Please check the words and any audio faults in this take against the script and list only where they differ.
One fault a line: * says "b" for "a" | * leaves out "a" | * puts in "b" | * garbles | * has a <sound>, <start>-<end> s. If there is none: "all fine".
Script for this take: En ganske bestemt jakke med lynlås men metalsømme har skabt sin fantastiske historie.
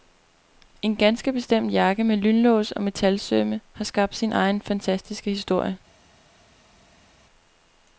* says "og" for "men"
* puts in "egen"